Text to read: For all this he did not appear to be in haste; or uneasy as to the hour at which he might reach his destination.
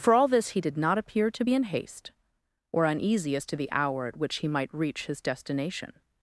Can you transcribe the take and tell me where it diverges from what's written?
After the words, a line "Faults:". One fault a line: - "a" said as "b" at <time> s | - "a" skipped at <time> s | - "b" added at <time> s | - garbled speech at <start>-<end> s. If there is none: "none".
For all this he did not appear to be in haste; or uneasy as to the hour at which he might reach his destination.
Faults:
none